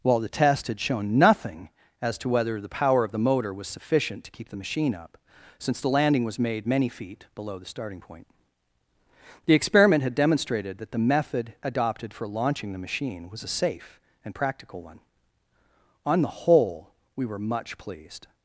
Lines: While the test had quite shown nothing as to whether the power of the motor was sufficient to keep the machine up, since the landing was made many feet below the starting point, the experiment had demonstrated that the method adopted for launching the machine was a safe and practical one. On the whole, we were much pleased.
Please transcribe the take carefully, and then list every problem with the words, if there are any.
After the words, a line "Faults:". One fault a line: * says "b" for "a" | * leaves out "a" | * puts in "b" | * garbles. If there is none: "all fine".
While the test had shown nothing as to whether the power of the motor was sufficient to keep the machine up, since the landing was made many feet below the starting point, the experiment had demonstrated that the method adopted for launching the machine was a safe and practical one. On the whole, we were much pleased.
Faults:
* leaves out "quite"